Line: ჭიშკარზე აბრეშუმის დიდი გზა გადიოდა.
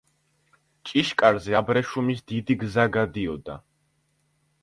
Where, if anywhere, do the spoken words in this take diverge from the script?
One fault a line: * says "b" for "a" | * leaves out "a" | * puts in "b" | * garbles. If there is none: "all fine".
all fine